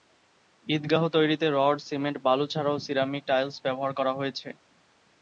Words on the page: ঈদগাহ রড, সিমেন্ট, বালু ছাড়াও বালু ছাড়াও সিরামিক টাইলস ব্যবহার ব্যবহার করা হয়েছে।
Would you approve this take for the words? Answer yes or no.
no